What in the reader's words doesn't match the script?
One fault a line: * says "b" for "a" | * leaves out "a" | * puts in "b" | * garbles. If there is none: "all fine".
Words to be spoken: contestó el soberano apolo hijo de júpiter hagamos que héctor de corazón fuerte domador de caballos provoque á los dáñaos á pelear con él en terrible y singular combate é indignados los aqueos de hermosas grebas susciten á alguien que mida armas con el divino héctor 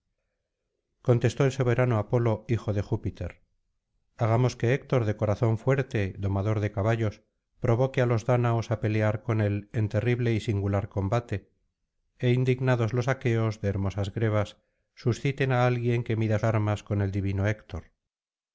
all fine